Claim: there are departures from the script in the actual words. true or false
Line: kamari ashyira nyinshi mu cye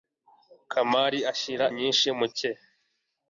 false